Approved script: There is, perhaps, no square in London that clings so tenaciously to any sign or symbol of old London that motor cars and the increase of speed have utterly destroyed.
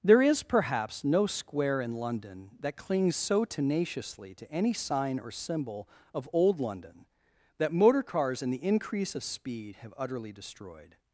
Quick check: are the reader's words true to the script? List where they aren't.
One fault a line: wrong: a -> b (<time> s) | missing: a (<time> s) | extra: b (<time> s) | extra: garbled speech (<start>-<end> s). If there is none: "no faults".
no faults